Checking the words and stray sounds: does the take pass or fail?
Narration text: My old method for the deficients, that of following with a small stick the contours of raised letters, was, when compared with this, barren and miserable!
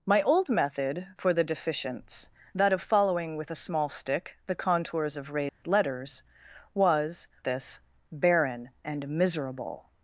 fail